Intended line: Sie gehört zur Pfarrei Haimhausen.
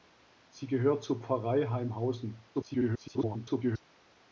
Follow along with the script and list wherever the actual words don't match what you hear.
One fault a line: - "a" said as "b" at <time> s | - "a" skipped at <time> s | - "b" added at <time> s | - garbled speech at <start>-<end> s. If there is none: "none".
- garbled speech at 2.5-3.8 s